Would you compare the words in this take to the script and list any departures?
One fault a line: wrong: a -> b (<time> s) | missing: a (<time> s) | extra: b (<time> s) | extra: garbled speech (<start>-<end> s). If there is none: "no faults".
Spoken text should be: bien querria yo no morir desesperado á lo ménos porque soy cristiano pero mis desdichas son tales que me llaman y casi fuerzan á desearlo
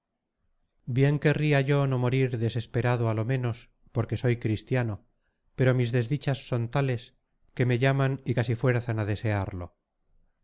no faults